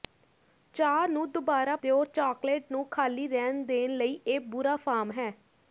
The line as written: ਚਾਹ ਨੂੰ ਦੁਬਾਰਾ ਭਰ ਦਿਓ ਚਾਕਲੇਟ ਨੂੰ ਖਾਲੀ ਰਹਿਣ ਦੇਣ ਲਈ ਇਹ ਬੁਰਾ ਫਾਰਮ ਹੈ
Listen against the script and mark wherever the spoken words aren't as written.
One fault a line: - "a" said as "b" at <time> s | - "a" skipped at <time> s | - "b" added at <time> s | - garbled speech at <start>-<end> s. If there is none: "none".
- "ਭਰ" skipped at 1.8 s